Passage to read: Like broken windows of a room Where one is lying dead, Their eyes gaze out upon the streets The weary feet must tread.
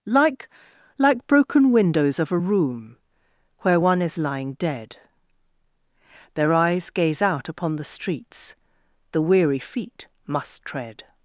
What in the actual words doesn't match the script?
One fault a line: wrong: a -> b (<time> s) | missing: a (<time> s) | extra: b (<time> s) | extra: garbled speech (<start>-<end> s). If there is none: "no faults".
extra: like (1.0 s)